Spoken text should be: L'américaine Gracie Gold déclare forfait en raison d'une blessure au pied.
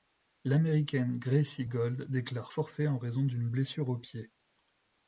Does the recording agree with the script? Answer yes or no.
yes